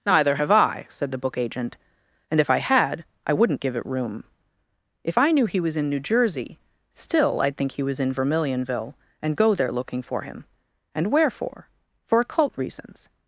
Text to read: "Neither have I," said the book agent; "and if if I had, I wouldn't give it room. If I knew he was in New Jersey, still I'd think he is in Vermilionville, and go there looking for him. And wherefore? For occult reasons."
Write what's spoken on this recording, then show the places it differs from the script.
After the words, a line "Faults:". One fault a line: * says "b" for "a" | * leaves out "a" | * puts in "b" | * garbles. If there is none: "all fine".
"Neither have I," said the book agent; "and if I had, I wouldn't give it room. If I knew he was in New Jersey, still I'd think he was in Vermilionville, and go there looking for him. And wherefore? For occult reasons."
Faults:
* leaves out "if"
* says "was" for "is"